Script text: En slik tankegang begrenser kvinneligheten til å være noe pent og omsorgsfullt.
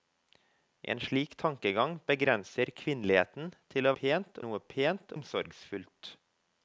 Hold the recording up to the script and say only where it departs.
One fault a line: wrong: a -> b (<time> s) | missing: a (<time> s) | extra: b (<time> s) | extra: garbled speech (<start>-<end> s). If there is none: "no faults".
wrong: være -> pent (4.0 s)
missing: og (5.2 s)